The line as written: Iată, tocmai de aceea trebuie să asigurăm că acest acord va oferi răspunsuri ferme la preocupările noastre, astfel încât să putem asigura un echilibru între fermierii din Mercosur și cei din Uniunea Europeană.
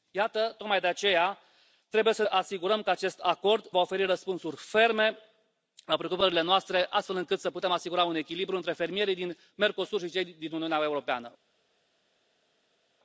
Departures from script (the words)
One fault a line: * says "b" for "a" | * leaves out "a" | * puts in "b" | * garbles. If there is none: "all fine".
all fine